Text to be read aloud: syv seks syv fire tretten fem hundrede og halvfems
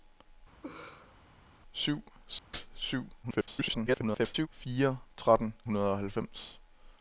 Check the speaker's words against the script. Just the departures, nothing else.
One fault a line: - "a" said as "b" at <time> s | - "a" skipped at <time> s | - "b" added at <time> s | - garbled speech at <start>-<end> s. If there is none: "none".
- garbled speech at 3.2-4.5 s
- "fem" skipped at 5.5 s